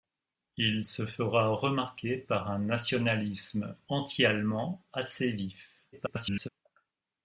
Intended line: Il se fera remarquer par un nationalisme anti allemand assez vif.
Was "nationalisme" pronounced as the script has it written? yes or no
yes